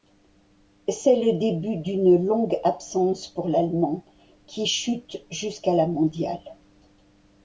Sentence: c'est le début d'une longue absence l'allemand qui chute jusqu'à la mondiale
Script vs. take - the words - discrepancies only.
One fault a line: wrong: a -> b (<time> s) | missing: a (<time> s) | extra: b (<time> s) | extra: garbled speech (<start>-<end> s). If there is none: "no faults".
extra: pour (3.3 s)